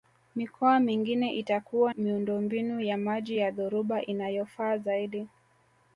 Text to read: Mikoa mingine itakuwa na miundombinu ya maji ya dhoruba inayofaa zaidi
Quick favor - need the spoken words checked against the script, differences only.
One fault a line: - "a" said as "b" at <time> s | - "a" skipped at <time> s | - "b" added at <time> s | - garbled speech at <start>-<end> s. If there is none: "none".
- "na" skipped at 1.9 s